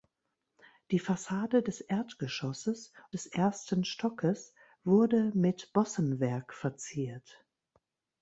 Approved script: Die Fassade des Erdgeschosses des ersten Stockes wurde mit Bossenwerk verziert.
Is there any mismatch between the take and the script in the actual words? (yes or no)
no